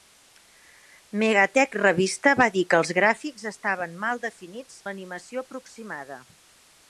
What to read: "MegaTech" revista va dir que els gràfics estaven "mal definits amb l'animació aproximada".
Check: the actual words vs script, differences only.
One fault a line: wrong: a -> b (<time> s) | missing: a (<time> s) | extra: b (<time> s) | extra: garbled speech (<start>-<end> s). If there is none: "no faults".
missing: amb (4.8 s)